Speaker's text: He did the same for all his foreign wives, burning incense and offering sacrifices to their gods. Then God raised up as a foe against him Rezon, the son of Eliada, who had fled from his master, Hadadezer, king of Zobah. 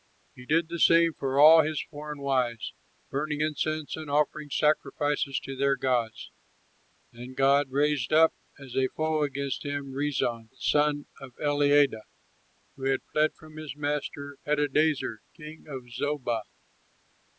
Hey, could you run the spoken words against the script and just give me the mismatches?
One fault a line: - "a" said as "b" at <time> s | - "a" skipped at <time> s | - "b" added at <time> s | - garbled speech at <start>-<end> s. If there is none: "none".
none